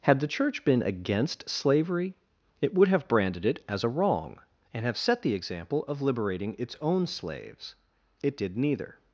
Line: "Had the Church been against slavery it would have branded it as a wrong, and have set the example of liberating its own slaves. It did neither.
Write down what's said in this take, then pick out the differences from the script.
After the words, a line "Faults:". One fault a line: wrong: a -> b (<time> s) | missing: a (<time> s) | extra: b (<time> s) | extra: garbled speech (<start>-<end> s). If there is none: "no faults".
"Had the Church been against slavery it would have branded it as a wrong, and have set the example of liberating its own slaves. It did neither.
Faults:
no faults